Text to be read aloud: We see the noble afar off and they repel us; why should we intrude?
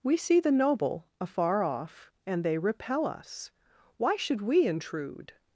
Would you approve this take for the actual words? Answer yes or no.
yes